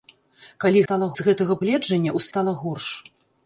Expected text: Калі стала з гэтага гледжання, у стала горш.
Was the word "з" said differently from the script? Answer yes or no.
no